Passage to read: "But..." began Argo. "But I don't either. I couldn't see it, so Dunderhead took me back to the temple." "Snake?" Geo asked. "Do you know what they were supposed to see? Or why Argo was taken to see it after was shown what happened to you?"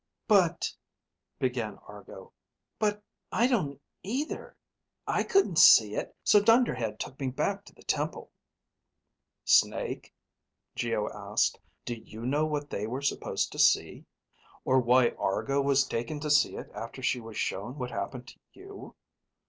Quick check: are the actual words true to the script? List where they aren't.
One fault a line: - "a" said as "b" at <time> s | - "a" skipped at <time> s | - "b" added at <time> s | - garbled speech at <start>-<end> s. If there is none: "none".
- "she" added at 17.0 s